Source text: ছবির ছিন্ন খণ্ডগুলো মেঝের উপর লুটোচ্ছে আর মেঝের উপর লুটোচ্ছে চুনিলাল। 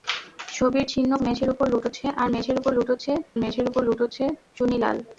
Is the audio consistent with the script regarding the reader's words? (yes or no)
no